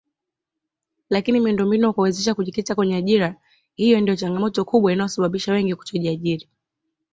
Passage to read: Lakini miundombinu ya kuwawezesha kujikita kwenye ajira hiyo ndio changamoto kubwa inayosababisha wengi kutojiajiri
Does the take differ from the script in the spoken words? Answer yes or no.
no